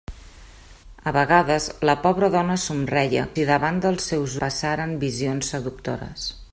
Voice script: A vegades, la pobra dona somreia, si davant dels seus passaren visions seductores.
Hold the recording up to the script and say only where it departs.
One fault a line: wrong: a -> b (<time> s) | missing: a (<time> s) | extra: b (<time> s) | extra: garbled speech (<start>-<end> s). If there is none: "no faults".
no faults